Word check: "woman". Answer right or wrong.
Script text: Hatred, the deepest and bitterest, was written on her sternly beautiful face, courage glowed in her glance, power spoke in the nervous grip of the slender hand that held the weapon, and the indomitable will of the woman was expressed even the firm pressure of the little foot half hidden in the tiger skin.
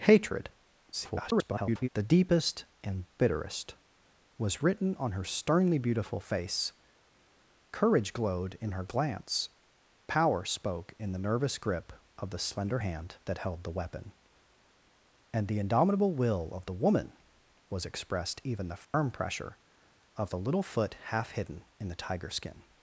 right